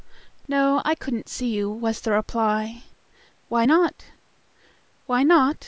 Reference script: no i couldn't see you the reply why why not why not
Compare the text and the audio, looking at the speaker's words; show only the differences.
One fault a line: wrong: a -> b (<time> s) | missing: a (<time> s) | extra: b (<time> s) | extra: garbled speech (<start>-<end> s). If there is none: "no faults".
extra: was (1.7 s)
missing: why (3.7 s)